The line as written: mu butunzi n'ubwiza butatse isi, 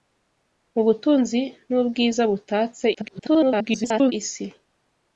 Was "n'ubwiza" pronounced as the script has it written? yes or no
yes